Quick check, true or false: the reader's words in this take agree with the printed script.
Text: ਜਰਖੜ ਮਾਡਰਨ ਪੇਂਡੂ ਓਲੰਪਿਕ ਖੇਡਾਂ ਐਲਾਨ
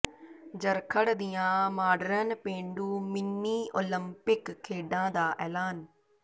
false